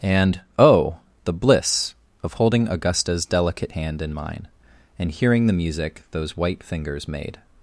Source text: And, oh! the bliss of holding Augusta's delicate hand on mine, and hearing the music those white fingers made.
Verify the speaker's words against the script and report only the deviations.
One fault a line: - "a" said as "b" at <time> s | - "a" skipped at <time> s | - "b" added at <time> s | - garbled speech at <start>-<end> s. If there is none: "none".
- "on" said as "in" at 4.0 s